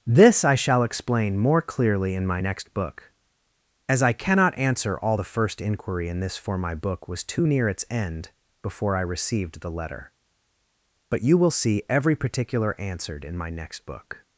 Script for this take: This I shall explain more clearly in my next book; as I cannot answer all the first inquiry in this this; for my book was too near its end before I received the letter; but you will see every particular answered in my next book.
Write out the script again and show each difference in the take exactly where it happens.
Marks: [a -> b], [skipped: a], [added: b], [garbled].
This I shall explain more clearly in my next book; as I cannot answer all the first inquiry in this [skipped: this;] for my book was too near its end before I received the letter; but you will see every particular answered in my next book.